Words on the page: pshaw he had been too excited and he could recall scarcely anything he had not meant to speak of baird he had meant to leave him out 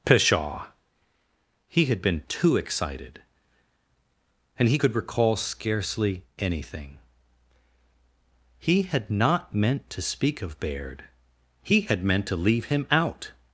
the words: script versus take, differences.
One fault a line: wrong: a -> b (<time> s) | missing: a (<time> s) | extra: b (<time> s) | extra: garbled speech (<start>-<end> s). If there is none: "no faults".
no faults